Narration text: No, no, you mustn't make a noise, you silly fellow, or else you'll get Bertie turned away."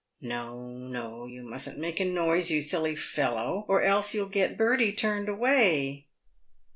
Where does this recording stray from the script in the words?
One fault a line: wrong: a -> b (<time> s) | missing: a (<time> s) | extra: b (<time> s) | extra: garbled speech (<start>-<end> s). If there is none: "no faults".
no faults